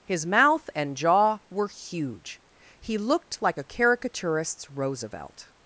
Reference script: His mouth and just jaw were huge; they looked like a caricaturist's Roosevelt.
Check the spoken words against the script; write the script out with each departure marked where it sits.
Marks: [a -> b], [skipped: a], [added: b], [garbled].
His mouth and [skipped: just] jaw were huge; [they -> he] looked like a caricaturist's Roosevelt.